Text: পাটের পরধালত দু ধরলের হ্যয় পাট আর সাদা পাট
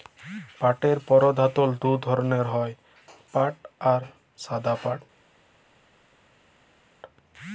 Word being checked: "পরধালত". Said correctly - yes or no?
yes